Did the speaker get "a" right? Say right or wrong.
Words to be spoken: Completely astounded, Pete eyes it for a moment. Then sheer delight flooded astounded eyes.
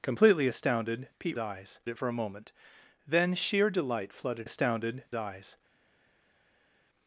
right